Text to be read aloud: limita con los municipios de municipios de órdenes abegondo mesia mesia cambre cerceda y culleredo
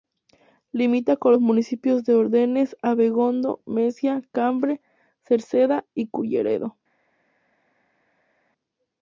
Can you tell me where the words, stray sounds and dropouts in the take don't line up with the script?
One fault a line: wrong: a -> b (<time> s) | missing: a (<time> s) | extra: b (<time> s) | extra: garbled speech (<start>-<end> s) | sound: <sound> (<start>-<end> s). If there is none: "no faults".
missing: municipios de (2.1 s)
missing: mesia (4.2 s)